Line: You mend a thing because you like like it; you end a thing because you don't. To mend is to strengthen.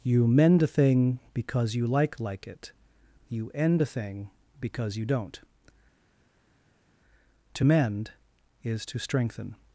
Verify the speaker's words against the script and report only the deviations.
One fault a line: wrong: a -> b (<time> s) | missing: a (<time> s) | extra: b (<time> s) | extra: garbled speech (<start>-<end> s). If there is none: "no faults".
no faults